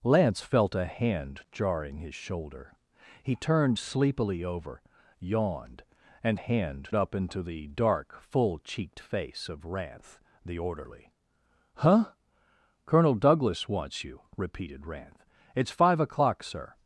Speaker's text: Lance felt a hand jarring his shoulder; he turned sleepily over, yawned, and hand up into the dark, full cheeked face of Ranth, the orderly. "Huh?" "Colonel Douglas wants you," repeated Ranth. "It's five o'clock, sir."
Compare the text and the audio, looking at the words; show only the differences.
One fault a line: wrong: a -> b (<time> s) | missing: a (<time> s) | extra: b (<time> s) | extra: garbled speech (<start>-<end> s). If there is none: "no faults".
no faults